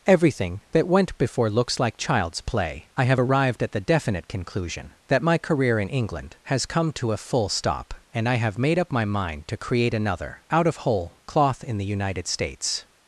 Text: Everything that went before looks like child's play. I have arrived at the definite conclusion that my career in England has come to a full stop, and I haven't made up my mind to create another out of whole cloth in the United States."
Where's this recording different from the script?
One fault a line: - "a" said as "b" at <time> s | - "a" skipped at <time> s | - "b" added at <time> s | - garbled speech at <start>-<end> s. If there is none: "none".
- "haven't" said as "have" at 8.3 s